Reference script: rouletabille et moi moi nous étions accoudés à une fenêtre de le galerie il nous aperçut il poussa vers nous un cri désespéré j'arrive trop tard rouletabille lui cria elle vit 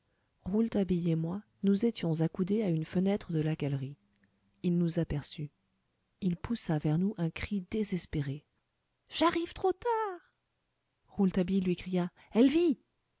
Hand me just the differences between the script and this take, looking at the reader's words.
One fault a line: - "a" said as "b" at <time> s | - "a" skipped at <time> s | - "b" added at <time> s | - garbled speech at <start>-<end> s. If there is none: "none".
- "moi" skipped at 1.4 s
- "le" said as "la" at 3.4 s